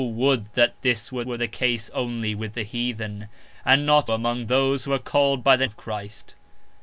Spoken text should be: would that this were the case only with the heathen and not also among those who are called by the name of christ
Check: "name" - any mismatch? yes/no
yes